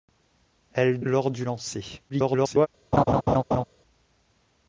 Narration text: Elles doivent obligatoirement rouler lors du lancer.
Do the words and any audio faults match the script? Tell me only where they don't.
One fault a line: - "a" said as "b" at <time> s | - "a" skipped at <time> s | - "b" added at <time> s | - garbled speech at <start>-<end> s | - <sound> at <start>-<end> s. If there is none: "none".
- "doivent obligatoirement rouler" skipped at 1.0 s
- garbled speech at 2.1-2.7 s
- laugh at 2.9-3.6 s